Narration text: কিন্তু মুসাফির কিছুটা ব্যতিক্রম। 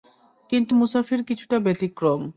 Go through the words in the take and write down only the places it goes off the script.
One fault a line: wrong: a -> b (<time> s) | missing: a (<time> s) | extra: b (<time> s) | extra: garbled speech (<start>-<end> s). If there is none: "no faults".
no faults